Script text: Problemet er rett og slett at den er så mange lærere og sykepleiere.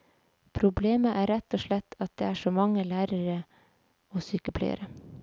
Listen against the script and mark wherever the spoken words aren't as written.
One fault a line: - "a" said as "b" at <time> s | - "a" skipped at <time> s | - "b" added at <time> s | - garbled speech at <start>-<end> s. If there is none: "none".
- "den" said as "det" at 2.2 s